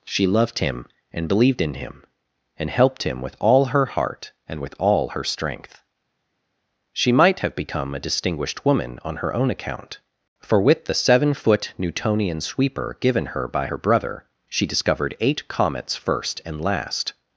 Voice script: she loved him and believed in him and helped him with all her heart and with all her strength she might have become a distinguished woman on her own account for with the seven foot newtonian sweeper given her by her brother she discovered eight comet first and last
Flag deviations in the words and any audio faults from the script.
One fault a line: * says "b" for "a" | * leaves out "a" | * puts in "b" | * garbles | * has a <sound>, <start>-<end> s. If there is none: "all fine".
* says "comets" for "comet"